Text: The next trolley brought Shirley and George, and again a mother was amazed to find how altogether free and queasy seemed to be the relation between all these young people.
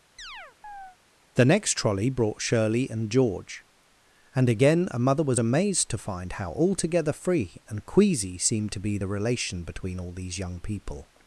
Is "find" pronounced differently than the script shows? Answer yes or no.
no